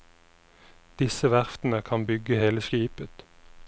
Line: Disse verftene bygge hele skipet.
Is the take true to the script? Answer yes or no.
no